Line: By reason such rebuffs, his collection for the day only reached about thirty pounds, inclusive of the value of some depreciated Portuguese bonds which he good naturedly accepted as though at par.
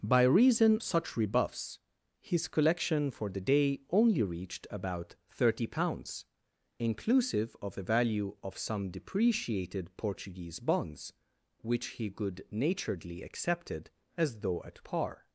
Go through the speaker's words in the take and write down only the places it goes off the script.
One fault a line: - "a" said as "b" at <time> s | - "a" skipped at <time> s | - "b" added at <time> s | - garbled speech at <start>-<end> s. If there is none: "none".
none